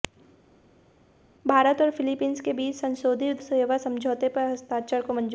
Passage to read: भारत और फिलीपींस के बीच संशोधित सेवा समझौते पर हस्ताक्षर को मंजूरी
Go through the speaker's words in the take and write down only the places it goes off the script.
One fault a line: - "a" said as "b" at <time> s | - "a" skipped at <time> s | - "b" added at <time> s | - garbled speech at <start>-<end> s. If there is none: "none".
none